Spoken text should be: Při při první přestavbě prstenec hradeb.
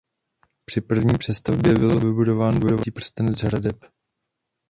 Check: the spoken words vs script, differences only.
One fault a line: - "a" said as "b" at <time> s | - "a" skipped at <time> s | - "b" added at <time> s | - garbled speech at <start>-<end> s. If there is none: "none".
- "při" skipped at 0.8 s
- "byl vybudován dvojitý" added at 1.7 s